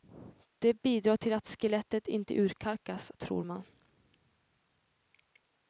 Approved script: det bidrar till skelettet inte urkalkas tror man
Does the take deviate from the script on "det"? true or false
false